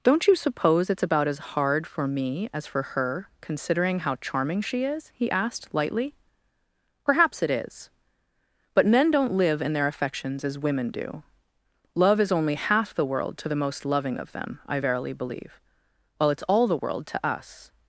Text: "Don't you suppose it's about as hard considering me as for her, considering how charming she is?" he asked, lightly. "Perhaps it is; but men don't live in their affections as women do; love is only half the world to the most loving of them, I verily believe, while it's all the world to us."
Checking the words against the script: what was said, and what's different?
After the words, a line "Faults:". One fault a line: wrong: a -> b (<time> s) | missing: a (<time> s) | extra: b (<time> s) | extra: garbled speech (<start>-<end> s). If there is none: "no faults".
"Don't you suppose it's about as hard for me as for her, considering how charming she is?" he asked, lightly. "Perhaps it is; but men don't live in their affections as women do; love is only half the world to the most loving of them, I verily believe, while it's all the world to us."
Faults:
wrong: considering -> for (1.9 s)